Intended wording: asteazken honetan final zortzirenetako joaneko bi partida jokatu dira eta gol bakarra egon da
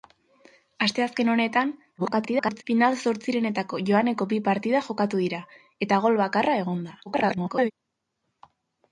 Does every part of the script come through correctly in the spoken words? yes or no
no